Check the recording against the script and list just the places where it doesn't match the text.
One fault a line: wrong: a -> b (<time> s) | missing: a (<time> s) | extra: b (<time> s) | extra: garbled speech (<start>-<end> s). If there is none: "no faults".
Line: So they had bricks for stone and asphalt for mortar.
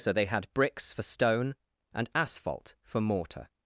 no faults